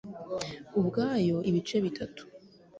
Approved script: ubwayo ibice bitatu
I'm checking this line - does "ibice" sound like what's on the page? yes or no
yes